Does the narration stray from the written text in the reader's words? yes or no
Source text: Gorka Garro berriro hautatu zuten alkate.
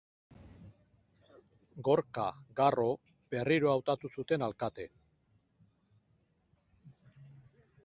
no